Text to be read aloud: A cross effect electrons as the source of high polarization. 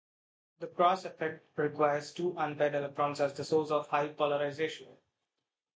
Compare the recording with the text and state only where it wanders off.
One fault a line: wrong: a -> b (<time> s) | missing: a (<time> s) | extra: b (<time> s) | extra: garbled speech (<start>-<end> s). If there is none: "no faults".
wrong: A -> The (0.6 s)
extra: requires two unpaired (1.6 s)